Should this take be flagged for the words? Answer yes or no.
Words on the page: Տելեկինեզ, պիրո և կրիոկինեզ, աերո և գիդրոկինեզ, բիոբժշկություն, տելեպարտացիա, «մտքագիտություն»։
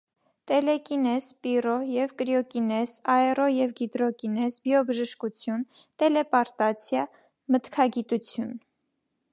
no